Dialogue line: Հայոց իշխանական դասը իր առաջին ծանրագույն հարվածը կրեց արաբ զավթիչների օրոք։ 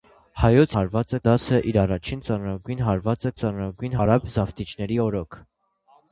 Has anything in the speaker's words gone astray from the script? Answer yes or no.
yes